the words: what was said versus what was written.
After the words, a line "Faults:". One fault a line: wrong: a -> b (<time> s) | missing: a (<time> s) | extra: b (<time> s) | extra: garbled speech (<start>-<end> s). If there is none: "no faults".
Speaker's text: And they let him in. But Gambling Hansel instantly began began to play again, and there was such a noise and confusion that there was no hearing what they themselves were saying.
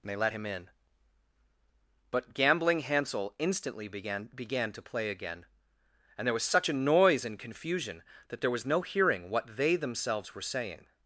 And they let him in. But Gambling Hansel instantly began began to play again, and there was such a noise and confusion that there was no hearing what they themselves were saying.
Faults:
no faults